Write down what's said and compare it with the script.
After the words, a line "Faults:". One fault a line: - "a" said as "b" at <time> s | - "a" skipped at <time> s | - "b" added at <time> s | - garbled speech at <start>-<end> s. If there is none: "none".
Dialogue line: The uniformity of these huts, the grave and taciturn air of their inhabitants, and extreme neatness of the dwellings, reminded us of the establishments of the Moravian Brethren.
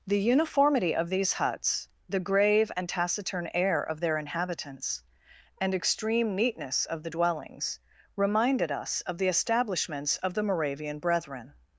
The uniformity of these huts, the grave and taciturn air of their inhabitants, and extreme neatness of the dwellings, reminded us of the establishments of the Moravian Brethren.
Faults:
none